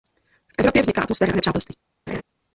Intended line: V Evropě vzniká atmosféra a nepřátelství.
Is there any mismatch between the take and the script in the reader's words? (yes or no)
no